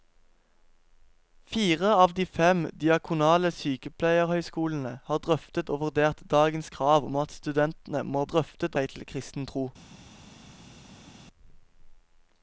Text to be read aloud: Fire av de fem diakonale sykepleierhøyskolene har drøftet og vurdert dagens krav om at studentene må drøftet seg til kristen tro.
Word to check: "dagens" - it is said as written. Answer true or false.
true